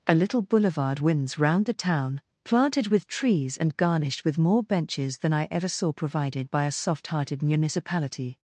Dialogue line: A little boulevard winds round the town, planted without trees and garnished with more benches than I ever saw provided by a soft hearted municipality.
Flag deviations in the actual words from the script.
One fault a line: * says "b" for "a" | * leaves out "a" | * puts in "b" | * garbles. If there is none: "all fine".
* says "with" for "without"